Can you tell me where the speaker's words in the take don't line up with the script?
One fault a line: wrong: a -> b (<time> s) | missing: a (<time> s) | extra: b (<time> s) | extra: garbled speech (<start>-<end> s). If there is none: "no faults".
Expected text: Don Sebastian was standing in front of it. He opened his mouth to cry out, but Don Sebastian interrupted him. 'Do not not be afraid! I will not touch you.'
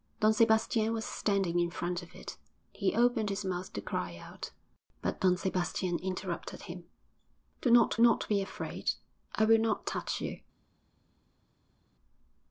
no faults